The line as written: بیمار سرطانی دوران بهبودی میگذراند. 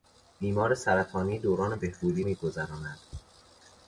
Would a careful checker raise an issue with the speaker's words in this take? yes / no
no